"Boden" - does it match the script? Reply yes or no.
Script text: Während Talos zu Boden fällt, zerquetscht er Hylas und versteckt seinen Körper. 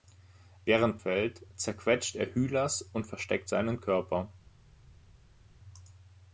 no